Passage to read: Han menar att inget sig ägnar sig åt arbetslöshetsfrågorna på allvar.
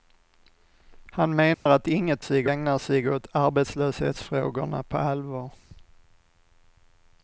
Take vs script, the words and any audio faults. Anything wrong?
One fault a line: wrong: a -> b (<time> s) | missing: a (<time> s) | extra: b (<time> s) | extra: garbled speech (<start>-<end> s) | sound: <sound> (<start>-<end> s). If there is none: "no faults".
sound: dropout (1.5-1.7 s)